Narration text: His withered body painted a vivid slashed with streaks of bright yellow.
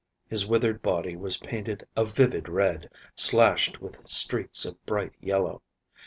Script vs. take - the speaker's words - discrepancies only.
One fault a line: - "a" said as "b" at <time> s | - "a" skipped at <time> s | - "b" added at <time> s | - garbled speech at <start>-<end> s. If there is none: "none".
- "was" added at 1.1 s
- "red" added at 2.5 s